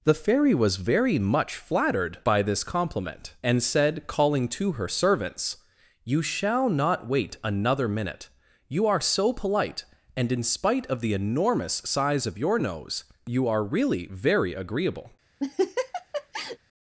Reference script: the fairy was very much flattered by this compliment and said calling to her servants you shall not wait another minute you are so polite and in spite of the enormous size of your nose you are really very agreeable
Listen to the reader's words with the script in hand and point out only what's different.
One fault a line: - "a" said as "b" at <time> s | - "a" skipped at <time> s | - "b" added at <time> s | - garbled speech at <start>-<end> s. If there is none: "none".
none